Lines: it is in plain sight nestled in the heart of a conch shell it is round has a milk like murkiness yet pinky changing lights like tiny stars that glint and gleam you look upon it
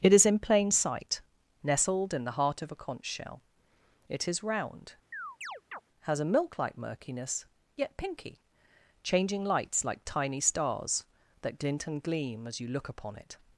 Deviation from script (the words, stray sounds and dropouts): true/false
true